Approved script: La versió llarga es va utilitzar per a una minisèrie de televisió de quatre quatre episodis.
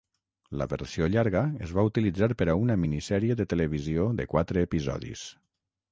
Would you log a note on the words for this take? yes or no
yes